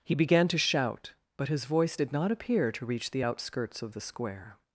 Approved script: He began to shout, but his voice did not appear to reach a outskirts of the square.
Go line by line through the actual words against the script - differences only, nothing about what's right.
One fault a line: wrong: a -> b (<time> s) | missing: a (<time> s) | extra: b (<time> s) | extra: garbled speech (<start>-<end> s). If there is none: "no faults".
wrong: a -> the (3.1 s)